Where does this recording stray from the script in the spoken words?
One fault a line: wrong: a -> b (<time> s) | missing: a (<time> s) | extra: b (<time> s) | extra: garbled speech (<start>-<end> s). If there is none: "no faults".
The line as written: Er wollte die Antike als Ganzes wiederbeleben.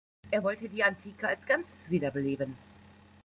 no faults